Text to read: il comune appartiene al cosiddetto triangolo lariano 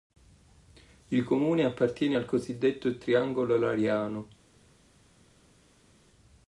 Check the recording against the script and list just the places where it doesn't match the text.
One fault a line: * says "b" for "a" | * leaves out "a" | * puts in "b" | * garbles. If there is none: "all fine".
all fine